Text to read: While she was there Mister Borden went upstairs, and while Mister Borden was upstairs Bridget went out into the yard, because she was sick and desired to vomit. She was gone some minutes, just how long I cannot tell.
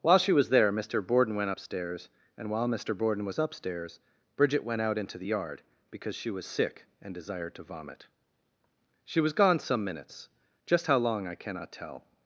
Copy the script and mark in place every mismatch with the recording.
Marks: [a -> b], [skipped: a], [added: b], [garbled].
While she was there Mister Borden went upstairs, and while Mister Borden was upstairs Bridget went out into the yard, because she was sick and desired to vomit. She was gone some minutes, just how long I cannot tell.